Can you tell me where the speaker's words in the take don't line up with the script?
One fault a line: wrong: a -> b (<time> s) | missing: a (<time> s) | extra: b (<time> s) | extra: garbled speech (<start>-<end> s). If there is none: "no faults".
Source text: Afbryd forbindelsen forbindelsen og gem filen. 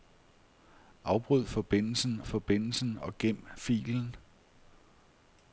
no faults